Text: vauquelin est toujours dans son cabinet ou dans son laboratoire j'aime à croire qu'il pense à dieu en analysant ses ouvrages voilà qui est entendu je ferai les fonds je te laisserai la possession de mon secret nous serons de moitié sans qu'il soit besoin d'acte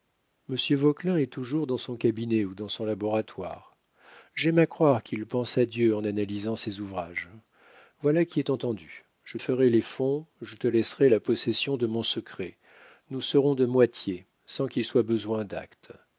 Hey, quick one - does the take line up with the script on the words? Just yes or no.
yes